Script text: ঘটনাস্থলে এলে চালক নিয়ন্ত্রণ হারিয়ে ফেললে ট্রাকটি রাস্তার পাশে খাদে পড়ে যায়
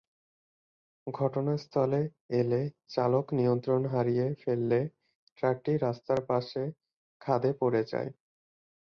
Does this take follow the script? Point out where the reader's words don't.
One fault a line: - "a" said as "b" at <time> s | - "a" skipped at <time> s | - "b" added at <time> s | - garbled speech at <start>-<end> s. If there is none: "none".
none